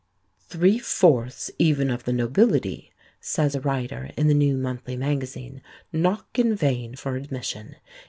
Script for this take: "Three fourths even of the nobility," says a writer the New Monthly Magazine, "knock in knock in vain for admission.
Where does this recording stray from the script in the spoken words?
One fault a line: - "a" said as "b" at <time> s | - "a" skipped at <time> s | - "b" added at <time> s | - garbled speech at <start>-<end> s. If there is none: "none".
- "in" added at 4.1 s
- "knock in" skipped at 6.5 s